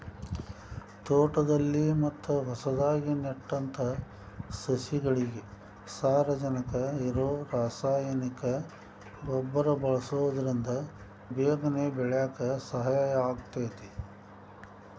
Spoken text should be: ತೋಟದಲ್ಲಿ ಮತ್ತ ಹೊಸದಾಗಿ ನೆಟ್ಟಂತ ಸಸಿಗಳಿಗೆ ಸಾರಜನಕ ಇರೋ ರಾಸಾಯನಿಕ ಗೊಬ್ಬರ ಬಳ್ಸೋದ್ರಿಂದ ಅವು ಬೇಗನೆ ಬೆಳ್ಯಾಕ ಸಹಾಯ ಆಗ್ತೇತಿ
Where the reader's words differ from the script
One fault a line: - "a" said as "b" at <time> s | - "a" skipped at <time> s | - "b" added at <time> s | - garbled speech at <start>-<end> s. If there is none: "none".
- "ಅವು" skipped at 10.7 s